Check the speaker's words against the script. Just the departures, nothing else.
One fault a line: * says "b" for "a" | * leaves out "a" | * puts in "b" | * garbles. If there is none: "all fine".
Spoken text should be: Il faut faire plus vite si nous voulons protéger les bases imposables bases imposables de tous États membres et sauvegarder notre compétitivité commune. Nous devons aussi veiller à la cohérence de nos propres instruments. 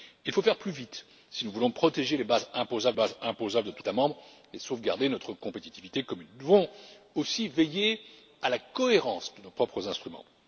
all fine